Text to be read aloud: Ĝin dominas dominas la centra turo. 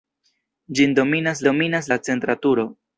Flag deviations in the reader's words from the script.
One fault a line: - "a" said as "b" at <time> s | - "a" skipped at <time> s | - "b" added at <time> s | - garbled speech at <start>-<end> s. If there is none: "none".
none